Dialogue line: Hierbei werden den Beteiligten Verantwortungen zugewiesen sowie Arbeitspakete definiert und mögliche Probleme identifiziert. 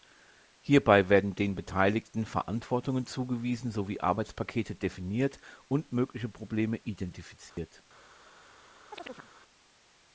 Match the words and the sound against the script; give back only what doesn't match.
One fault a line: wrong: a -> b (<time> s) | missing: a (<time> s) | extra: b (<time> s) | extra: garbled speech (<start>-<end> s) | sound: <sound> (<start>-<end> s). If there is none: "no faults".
sound: dropout (7.5-7.6 s)
sound: chirp (8.9-9.3 s)